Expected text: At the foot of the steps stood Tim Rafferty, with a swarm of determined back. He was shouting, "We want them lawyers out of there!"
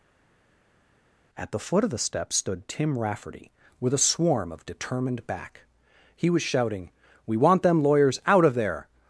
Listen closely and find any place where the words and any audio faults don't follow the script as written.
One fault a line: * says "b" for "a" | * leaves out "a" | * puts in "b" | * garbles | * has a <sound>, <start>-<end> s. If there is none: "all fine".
all fine